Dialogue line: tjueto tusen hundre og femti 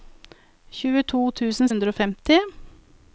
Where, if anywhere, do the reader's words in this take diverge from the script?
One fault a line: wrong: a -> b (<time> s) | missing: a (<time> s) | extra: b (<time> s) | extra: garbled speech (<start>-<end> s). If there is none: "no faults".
no faults